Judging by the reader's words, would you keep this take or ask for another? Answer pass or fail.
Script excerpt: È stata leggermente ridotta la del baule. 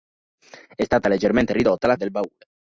pass